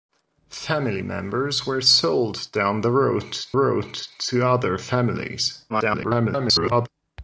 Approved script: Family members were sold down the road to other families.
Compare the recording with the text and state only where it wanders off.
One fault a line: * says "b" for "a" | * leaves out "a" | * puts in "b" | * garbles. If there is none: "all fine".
* puts in "road"
* garbles